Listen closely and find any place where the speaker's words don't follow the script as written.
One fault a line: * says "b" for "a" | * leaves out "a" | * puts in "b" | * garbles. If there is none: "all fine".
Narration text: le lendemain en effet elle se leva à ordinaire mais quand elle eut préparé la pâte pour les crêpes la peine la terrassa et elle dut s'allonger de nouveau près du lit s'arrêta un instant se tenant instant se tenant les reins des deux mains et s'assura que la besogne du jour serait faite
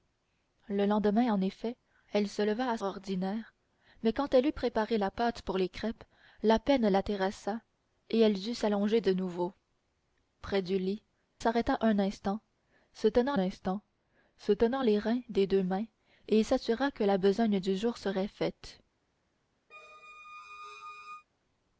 all fine